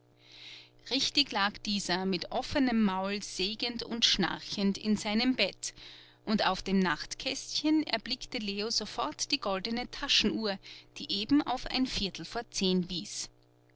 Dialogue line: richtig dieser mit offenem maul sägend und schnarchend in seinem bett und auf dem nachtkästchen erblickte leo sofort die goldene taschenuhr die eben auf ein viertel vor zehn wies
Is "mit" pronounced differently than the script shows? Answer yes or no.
no